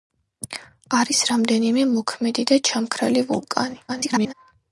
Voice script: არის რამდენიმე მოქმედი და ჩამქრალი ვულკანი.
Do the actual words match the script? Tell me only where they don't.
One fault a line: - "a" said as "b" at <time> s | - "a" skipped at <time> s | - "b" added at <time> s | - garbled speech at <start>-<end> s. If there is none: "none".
- garbled speech at 3.9-4.3 s